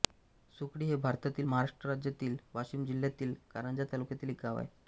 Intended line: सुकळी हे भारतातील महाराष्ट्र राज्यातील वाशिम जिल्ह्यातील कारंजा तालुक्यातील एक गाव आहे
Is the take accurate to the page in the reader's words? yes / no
yes